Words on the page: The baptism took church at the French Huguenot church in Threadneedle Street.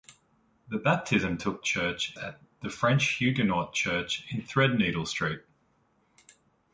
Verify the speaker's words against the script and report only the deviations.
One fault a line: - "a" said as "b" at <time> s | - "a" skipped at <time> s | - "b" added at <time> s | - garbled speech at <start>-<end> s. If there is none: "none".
none